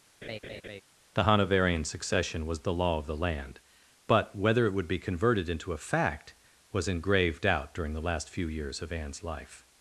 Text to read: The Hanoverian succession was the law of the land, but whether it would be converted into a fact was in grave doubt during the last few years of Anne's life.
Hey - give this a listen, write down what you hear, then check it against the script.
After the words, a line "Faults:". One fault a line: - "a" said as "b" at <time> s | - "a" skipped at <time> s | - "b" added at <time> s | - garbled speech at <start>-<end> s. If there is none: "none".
The Hanoverian succession was the law of the land, but whether it would be converted into a fact was in grave doubt during the last few years of Anne's life.
Faults:
none